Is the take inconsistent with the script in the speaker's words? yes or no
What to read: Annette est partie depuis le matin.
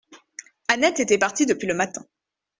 yes